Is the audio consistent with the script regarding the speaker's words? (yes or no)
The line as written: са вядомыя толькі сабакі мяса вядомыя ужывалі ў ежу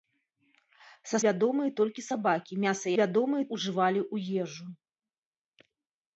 yes